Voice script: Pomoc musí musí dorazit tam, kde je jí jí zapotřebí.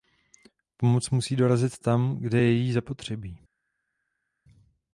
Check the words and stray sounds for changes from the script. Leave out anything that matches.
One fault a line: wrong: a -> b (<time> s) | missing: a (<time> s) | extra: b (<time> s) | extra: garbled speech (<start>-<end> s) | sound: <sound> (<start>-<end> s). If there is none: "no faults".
missing: musí (1.4 s)
missing: jí (2.7 s)